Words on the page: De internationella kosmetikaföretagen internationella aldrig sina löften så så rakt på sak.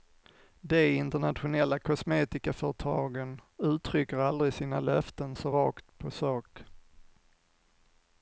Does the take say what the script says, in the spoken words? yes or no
no